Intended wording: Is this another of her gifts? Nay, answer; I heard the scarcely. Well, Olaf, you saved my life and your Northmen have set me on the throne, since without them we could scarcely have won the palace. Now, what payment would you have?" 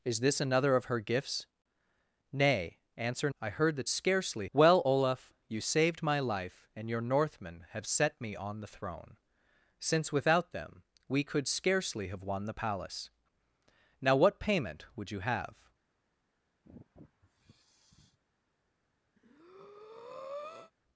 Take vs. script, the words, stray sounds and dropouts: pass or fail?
fail